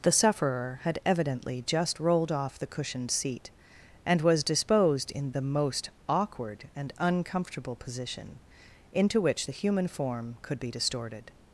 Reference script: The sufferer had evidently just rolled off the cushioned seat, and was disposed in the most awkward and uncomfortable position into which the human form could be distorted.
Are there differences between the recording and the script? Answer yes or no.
no